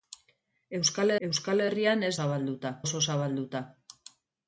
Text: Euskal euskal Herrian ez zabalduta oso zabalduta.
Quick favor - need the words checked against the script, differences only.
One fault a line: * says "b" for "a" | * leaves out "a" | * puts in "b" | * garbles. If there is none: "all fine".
all fine